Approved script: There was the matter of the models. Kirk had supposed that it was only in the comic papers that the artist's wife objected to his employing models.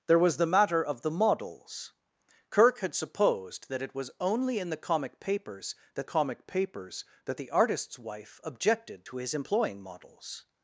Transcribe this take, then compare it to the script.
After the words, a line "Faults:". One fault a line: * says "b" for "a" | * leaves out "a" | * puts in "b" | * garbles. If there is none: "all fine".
There was the matter of the models. Kirk had supposed that it was only in the comic papers that comic papers that the artist's wife objected to his employing models.
Faults:
* puts in "comic papers that"